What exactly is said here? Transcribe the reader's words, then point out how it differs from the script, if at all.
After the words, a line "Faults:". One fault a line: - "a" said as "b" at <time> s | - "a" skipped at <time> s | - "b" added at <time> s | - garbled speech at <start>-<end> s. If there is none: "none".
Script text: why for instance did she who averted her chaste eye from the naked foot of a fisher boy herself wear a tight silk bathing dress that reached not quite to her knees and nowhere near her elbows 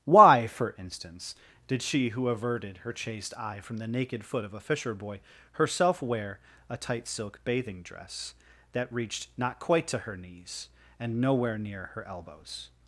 why for instance did she who averted her chaste eye from the naked foot of a fisher boy herself wear a tight silk bathing dress that reached not quite to her knees and nowhere near her elbows
Faults:
none